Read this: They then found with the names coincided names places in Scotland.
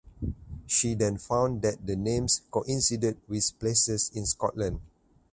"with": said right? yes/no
no